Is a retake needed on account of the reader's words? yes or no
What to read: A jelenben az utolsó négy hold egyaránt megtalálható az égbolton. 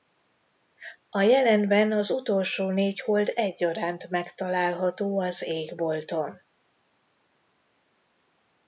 no